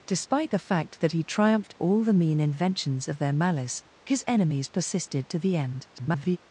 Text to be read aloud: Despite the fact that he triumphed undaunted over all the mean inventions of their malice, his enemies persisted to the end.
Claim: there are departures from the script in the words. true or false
true